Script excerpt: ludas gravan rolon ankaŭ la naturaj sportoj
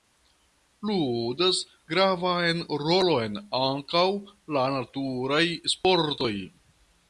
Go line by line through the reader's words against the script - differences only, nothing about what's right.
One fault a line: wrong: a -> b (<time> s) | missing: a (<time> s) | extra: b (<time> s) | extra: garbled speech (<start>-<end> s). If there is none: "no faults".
no faults